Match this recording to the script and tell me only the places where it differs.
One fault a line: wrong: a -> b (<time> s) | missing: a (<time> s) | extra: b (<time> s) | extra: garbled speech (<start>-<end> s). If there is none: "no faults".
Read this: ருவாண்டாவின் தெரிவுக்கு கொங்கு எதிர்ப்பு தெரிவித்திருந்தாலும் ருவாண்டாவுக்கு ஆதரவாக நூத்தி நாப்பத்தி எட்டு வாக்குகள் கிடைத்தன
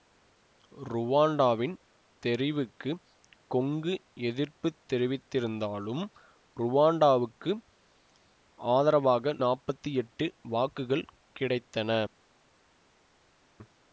missing: நூத்தி (9.3 s)